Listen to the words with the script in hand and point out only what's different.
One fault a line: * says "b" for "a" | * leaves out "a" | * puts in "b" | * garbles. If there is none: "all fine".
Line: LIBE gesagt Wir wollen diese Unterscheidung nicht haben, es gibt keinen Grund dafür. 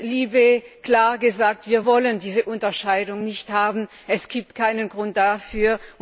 * puts in "klar"